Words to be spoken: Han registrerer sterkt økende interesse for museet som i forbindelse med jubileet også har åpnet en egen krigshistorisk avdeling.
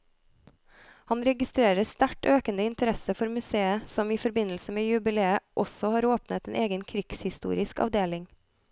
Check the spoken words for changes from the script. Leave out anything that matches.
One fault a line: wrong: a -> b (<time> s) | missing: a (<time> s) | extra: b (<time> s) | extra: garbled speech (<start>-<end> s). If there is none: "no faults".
no faults